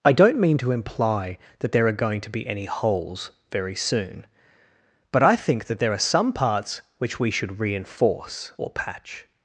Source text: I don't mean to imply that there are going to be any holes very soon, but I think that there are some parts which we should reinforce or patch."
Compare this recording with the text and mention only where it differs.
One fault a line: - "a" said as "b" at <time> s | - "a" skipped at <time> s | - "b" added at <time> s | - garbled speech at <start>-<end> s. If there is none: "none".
none